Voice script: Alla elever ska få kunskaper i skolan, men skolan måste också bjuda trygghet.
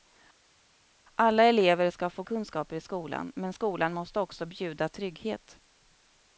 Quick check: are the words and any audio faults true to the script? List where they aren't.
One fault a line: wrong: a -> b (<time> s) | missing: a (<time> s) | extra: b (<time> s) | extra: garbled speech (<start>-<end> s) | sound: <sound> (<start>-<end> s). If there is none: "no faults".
no faults